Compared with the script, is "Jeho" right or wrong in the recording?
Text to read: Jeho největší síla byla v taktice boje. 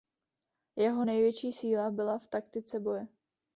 right